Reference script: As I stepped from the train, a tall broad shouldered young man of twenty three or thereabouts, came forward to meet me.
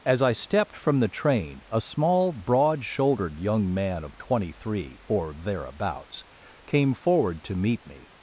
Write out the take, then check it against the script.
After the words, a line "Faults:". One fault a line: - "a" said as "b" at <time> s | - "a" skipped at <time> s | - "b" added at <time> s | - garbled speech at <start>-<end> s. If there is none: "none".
As I stepped from the train, a small broad shouldered young man of twenty three or thereabouts, came forward to meet me.
Faults:
- "tall" said as "small" at 1.8 s